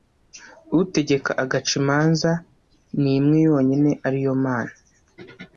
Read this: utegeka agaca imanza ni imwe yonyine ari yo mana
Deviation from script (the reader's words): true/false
false